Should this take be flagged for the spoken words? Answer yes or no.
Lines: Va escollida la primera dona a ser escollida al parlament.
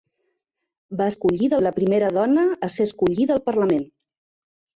no